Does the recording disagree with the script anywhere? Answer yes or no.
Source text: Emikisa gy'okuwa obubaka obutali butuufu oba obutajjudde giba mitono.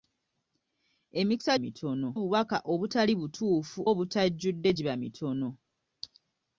yes